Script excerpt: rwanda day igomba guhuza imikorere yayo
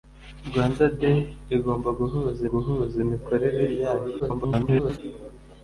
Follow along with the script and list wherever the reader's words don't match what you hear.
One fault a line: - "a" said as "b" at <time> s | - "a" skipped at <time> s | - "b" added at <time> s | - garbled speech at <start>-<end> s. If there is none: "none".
- "guhuza" added at 2.5 s
- garbled speech at 4.2-5.0 s